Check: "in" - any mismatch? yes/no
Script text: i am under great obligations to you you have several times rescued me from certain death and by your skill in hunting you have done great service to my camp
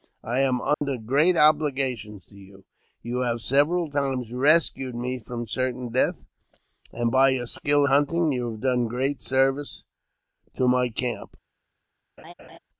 yes